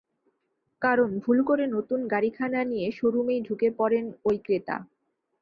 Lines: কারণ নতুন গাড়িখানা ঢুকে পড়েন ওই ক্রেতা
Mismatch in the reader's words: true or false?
true